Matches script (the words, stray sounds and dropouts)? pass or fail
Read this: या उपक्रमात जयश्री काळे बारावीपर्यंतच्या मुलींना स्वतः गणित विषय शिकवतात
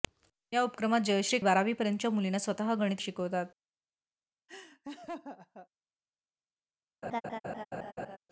fail